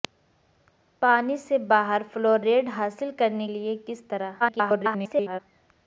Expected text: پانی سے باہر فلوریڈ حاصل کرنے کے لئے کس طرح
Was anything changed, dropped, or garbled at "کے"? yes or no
yes